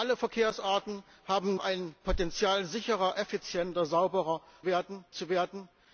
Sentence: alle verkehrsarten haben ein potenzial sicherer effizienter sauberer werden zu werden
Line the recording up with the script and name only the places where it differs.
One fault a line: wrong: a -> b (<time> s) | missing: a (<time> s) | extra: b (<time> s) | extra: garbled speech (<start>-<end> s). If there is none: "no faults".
no faults